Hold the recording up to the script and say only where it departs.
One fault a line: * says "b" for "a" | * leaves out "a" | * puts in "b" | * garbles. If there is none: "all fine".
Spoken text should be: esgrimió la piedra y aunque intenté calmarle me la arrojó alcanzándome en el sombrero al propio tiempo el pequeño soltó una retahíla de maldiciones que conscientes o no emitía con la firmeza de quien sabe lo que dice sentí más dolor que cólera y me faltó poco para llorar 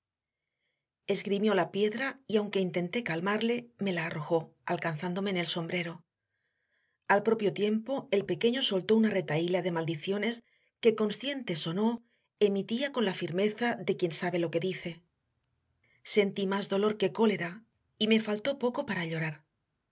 all fine